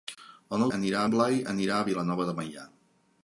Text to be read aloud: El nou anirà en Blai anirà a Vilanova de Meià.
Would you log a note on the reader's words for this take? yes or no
no